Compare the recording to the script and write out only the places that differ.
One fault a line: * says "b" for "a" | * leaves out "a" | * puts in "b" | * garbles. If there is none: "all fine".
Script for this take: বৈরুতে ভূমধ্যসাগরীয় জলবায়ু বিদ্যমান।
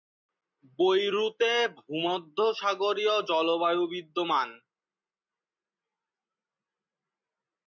all fine